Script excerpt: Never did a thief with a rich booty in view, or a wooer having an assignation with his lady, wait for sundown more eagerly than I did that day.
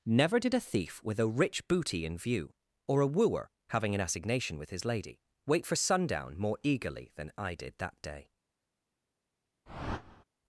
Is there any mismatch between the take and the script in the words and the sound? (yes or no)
yes